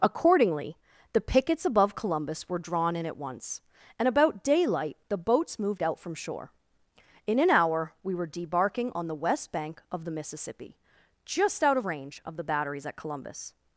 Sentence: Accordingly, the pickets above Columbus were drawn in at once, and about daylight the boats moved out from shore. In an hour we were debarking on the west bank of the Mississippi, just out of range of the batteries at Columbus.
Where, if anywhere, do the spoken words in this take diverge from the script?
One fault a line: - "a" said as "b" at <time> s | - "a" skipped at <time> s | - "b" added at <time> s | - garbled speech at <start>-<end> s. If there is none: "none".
none